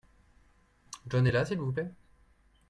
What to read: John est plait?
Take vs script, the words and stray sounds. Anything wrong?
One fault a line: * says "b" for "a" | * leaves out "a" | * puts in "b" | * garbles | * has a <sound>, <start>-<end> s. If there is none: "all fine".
* puts in "là s'il vous"